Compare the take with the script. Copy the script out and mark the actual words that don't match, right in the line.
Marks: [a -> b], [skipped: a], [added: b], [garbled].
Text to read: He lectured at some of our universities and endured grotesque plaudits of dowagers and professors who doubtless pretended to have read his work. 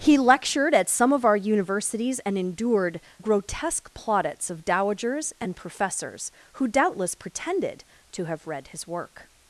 He lectured at some of our universities and endured grotesque plaudits of dowagers and professors who doubtless pretended to have read his work.